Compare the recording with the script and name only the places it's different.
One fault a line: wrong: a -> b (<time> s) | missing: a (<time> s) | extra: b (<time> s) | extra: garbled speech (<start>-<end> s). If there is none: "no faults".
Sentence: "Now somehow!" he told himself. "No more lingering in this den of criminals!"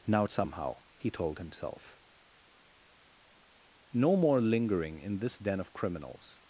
no faults